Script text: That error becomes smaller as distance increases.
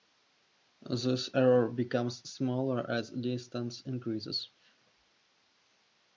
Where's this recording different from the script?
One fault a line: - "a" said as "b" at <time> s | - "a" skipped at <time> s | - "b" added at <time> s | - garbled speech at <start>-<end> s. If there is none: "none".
- "That" said as "This" at 0.8 s